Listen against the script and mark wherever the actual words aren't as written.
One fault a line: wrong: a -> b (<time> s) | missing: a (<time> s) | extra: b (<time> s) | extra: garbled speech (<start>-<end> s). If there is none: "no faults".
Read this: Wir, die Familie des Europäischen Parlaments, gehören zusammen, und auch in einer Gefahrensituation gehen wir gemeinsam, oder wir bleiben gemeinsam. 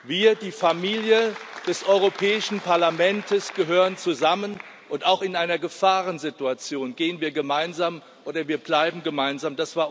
no faults